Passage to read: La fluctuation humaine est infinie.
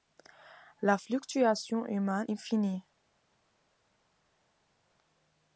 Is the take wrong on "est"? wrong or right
wrong